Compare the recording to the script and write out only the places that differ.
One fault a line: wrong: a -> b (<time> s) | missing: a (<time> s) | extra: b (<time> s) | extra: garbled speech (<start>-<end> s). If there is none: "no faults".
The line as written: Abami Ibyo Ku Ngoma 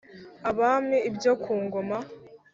no faults